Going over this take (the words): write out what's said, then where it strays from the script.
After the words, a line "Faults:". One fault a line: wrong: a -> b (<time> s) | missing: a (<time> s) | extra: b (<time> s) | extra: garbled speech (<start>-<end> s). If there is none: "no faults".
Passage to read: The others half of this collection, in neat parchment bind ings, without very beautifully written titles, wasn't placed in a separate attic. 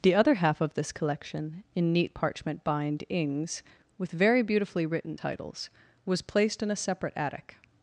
The other half of this collection, in neat parchment bind ings, with very beautifully written titles, was placed in a separate attic.
Faults:
wrong: others -> other (0.1 s)
wrong: without -> with (4.0 s)
wrong: wasn't -> was (6.0 s)